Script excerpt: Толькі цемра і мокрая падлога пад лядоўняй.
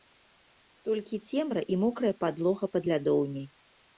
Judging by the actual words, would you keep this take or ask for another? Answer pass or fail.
pass